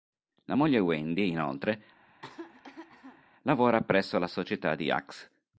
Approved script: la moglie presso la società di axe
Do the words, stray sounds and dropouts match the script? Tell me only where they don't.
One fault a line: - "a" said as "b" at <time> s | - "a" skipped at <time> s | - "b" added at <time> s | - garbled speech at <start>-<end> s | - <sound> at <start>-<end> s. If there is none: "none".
- "wendy inoltre lavora" added at 0.8 s
- cough at 2.1-3.2 s